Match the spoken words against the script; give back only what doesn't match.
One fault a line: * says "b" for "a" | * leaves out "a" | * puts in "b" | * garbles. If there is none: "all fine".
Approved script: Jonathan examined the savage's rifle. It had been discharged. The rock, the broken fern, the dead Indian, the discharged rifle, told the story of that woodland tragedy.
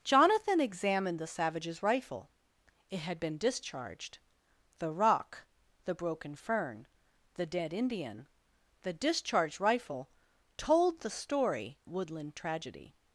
* leaves out "of that"